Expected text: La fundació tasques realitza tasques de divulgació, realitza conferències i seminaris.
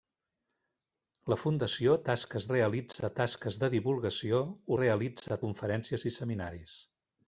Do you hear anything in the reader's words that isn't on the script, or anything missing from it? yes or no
no